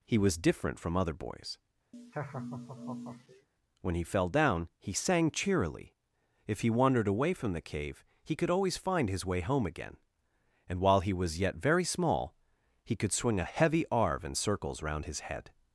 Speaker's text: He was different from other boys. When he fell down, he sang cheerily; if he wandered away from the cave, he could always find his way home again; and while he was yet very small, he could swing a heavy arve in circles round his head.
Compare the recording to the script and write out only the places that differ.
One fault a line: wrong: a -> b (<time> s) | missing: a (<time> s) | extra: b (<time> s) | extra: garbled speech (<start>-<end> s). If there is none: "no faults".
no faults